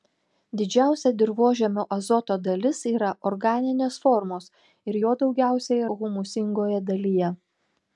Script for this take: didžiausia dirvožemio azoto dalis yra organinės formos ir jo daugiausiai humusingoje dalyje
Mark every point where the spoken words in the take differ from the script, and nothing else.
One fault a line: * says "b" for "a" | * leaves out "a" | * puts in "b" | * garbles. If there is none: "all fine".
all fine